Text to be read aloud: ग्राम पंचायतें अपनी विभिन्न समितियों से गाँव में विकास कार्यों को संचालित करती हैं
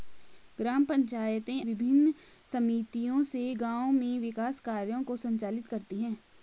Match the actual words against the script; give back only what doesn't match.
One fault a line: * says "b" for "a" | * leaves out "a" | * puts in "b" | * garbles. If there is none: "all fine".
* leaves out "अपनी"